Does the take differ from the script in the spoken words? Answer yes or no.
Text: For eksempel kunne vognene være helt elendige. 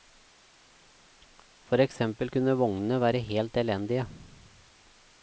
no